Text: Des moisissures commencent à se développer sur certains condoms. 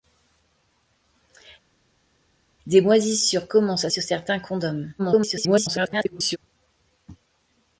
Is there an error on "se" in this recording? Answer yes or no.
yes